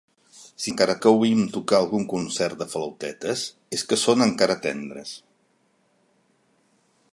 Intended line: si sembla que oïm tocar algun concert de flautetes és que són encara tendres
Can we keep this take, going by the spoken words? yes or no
no